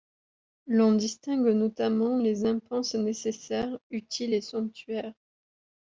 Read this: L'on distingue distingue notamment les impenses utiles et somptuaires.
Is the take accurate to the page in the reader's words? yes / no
no